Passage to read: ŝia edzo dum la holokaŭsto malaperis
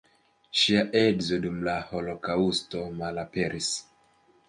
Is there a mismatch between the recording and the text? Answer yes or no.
no